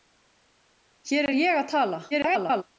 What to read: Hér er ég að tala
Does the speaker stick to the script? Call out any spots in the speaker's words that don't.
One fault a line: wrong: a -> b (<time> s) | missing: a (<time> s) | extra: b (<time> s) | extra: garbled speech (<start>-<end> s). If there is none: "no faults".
extra: garbled speech (2.1-2.6 s)